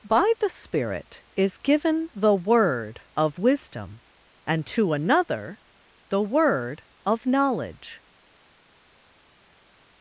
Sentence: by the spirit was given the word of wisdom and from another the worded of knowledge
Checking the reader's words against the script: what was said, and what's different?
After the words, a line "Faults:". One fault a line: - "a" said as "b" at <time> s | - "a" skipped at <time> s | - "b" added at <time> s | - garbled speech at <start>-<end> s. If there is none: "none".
by the spirit is given the word of wisdom and to another the word of knowledge
Faults:
- "was" said as "is" at 1.4 s
- "from" said as "to" at 4.6 s
- "worded" said as "word" at 6.2 s